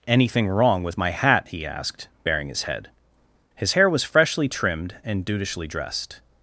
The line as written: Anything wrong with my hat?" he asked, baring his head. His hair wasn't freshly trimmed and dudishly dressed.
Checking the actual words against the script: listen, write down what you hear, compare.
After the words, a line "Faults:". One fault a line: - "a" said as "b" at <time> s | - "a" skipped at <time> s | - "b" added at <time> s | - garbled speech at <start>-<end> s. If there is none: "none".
Anything wrong with my hat?" he asked, baring his head. His hair was freshly trimmed and dudishly dressed.
Faults:
- "wasn't" said as "was" at 3.9 s